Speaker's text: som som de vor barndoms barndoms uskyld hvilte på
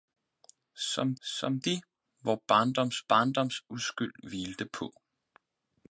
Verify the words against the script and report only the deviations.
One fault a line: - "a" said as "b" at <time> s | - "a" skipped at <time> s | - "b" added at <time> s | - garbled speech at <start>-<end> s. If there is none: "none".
none